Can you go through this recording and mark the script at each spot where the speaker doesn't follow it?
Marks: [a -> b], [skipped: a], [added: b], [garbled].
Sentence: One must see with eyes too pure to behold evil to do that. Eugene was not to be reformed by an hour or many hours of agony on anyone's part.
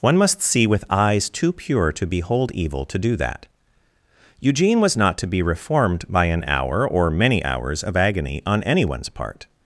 One must see with eyes too pure to behold evil to do that. Eugene was not to be reformed by an hour or many hours of agony on anyone's part.